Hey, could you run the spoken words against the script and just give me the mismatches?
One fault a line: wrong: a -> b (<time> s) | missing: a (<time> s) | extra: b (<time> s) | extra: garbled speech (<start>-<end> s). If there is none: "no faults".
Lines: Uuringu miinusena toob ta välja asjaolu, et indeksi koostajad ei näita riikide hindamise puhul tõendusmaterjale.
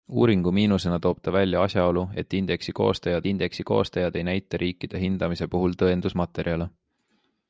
extra: indeksi koostajad (3.3 s)